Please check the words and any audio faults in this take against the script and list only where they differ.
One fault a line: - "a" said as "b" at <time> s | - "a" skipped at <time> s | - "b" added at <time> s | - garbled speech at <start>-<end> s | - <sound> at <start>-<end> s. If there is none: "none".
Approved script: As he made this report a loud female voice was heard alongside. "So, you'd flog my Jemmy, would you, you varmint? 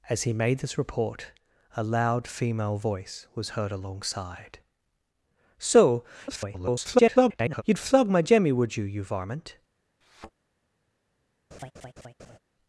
- garbled speech at 6.3-7.6 s
- thud at 10.0-10.3 s
- laugh at 11.5-12.4 s